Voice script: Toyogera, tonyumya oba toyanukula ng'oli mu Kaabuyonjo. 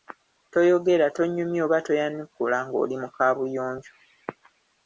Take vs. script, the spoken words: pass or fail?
pass